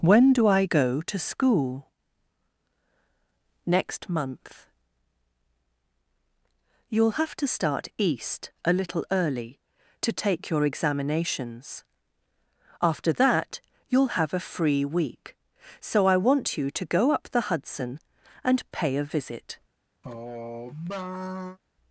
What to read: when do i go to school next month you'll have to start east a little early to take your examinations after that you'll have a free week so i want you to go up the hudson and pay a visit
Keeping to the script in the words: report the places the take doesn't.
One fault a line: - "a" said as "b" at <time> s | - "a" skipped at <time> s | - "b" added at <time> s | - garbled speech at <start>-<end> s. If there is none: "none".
none